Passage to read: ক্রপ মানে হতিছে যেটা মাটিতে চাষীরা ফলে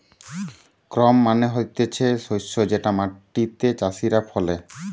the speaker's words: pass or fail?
fail